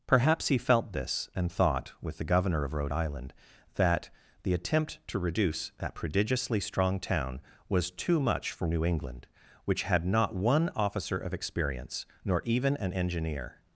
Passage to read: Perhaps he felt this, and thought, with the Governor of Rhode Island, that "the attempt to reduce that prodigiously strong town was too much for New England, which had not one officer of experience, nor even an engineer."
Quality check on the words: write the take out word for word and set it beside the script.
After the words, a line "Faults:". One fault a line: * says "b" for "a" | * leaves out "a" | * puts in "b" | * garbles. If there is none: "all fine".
Perhaps he felt this, and thought, with the Governor of Rhode Island, that "the attempt to reduce that prodigiously strong town was too much for New England, which had not one officer of experience, nor even an engineer."
Faults:
all fine